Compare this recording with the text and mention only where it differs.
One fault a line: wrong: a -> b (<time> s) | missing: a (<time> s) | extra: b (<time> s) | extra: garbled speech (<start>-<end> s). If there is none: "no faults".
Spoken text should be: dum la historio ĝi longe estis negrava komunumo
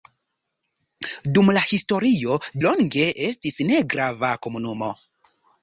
missing: ĝi (2.4 s)